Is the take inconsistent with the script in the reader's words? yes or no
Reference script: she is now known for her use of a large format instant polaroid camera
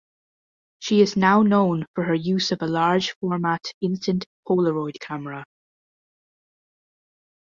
no